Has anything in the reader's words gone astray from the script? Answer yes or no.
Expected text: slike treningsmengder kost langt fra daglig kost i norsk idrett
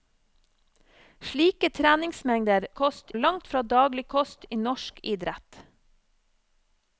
no